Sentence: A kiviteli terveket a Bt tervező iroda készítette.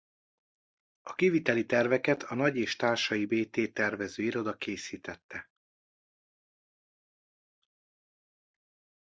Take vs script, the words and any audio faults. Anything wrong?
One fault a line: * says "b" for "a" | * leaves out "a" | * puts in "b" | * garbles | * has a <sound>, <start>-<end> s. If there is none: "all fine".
* puts in "Nagy és Társai"